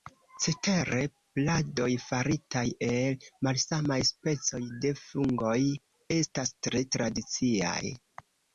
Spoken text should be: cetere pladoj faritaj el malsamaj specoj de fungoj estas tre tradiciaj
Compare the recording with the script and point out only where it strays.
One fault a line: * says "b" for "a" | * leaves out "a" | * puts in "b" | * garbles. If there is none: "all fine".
all fine